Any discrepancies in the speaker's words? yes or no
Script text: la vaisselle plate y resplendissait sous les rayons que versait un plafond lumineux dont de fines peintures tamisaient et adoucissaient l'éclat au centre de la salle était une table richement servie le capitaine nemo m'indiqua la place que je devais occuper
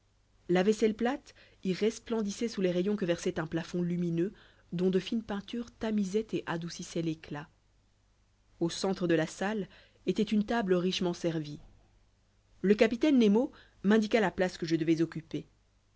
no